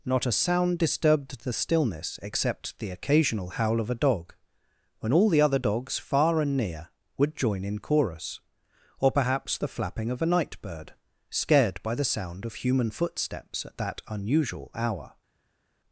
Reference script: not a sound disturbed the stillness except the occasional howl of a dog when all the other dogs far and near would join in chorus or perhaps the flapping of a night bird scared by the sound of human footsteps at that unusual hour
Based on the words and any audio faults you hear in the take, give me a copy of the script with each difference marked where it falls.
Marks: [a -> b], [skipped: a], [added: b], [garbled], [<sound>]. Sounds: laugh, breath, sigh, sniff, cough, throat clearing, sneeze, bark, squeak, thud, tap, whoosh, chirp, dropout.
not a sound disturbed the stillness except the occasional howl of a dog when all the other dogs far and near would join in chorus or perhaps the flapping of a night bird scared by the sound of human footsteps at that unusual hour